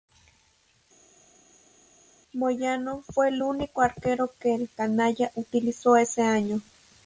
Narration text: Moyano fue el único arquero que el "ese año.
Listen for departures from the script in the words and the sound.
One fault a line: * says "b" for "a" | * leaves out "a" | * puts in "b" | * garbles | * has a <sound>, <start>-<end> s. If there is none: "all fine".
* puts in "canalla utilizó"